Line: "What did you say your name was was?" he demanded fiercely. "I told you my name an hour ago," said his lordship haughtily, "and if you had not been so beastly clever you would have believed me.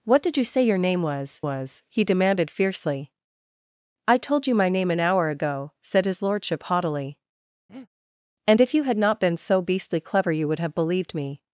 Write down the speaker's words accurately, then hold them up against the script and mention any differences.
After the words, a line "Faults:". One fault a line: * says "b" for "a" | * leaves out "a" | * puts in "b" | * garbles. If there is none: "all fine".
"What did you say your name was was?" he demanded fiercely. "I told you my name an hour ago," said his lordship haughtily, "and if you had not been so beastly clever you would have believed me.
Faults:
all fine